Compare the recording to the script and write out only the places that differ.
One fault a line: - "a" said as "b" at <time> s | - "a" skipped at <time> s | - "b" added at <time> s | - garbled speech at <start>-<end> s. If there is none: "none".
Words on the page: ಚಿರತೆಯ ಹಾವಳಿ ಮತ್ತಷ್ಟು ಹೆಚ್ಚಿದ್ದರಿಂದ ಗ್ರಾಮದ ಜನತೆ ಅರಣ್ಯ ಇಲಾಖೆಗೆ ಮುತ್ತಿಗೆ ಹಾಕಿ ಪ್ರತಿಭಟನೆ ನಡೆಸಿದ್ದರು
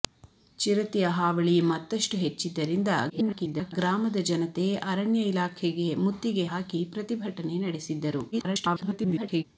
- garbled speech at 3.1-3.7 s
- garbled speech at 8.3-9.4 s